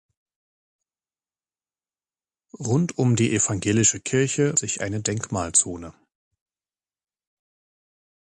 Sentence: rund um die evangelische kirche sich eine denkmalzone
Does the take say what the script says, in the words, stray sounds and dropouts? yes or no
yes